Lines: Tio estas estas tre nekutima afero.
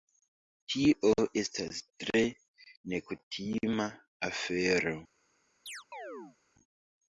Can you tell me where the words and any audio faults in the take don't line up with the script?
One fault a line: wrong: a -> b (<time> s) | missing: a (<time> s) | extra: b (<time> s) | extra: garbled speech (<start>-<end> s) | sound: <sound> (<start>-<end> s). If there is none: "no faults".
missing: estas (1.8 s)
sound: chirp (5.7-6.4 s)